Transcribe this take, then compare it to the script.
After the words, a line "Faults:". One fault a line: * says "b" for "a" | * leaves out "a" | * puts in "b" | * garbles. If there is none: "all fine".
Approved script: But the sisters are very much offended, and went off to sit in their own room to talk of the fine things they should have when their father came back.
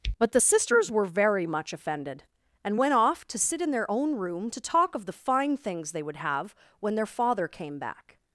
But the sisters were very much offended, and went off to sit in their own room to talk of the fine things they would have when their father came back.
Faults:
* says "were" for "are"
* says "would" for "should"